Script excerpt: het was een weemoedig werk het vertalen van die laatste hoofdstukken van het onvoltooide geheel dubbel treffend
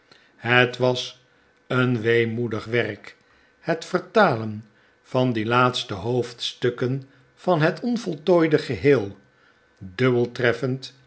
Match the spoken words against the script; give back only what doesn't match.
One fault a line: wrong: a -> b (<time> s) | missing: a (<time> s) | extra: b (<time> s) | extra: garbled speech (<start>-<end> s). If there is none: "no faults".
no faults